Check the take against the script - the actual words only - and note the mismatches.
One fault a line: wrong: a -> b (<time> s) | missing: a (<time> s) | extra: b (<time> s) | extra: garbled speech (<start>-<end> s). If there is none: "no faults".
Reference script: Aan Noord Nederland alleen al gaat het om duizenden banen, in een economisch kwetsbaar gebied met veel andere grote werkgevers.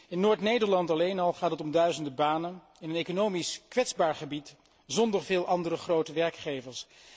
wrong: Aan -> In (0.1 s)
wrong: met -> zonder (4.8 s)